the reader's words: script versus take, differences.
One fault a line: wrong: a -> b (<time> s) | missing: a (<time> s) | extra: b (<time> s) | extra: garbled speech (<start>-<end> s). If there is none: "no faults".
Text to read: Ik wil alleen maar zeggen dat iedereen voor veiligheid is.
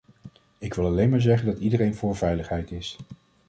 no faults